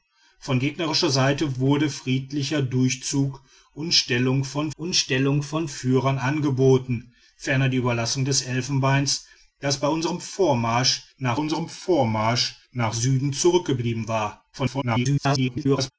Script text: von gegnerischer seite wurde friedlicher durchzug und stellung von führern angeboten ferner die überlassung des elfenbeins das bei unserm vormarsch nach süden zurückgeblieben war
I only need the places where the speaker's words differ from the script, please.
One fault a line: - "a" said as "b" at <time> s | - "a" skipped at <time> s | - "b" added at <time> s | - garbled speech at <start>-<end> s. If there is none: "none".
- "und stellung von" added at 4.8 s
- "unserm vormarsch nach" added at 11.3 s
- garbled speech at 14.5-15.9 s